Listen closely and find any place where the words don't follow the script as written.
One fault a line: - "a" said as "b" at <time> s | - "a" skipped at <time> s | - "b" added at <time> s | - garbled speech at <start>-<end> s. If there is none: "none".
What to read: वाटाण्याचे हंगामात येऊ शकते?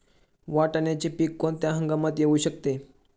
- "पीक कोणत्या" added at 1.1 s